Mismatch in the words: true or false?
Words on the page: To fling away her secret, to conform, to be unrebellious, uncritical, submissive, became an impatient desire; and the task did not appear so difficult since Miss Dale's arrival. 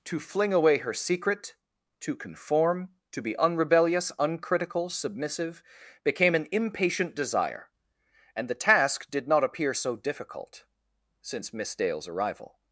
false